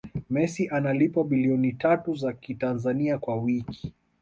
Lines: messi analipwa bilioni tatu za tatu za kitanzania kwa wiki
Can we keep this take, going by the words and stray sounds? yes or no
no